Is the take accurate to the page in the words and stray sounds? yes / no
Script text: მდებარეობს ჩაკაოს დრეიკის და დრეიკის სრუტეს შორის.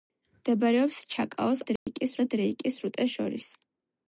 no